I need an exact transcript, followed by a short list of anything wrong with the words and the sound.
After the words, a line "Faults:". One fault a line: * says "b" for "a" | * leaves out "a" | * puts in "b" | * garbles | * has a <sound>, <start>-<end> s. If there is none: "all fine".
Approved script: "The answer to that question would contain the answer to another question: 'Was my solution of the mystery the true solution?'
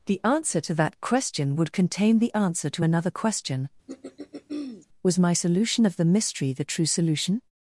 "The answer to that question would contain the answer to another question: 'Was my solution of the mystery the true solution?'
Faults:
* has a throat clearing, 3.9-4.9 s